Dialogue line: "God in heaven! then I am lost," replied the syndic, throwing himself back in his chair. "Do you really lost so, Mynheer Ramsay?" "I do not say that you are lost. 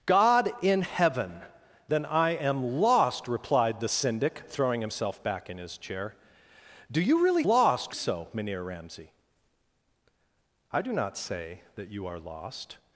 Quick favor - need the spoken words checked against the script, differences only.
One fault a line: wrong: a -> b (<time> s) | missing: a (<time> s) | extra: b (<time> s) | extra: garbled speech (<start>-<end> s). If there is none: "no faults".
no faults